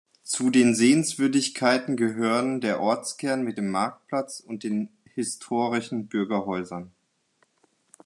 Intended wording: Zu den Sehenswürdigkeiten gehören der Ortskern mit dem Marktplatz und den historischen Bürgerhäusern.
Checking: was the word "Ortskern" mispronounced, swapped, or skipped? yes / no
no